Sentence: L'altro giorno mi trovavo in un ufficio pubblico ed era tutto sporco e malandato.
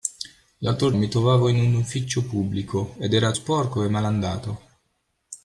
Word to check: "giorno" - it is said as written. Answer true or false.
false